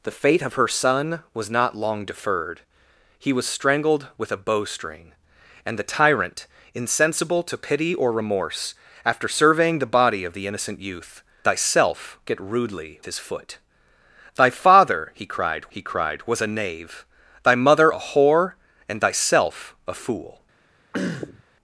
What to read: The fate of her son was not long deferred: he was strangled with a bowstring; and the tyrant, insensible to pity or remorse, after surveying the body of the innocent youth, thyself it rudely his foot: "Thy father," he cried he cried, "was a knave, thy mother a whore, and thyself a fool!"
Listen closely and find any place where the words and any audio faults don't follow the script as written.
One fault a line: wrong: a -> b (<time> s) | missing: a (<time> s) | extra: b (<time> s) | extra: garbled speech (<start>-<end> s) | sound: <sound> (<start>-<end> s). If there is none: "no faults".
sound: throat clearing (20.9-21.4 s)